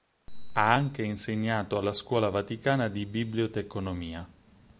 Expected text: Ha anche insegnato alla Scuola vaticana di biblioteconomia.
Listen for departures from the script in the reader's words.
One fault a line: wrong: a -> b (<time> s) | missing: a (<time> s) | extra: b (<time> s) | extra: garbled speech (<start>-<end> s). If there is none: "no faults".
no faults